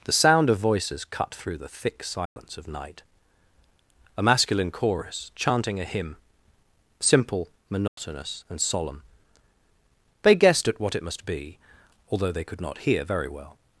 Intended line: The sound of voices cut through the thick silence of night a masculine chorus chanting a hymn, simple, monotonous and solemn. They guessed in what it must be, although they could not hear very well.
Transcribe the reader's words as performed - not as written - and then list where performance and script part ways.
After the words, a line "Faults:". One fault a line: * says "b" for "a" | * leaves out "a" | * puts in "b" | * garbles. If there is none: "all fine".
The sound of voices cut through the thick silence of night a masculine chorus chanting a hymn, simple, monotonous and solemn. They guessed at what it must be, although they could not hear very well.
Faults:
* says "at" for "in"